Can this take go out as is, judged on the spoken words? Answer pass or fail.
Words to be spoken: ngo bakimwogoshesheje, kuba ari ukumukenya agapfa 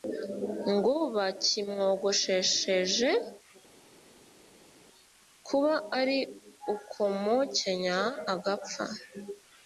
pass